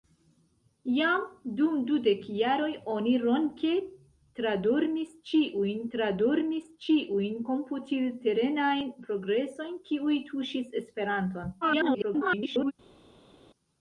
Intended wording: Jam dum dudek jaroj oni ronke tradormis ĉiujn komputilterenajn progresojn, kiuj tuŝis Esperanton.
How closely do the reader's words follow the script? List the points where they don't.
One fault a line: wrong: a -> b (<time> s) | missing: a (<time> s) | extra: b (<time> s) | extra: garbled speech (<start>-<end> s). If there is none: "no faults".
extra: tradormis ĉiujn (5.9 s)
extra: garbled speech (11.6-12.7 s)